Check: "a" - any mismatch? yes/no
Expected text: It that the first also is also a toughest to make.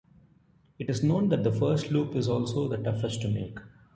yes